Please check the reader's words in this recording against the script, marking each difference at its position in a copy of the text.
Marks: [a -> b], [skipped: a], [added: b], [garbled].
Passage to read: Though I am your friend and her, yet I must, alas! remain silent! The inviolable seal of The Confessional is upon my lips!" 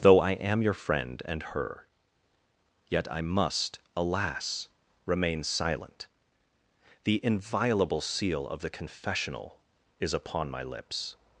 Though I am your friend and her, yet I must, alas! remain silent! The inviolable seal of The Confessional is upon my lips!"